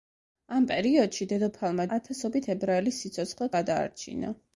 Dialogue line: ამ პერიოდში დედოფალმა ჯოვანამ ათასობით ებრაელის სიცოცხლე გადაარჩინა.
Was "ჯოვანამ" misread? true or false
true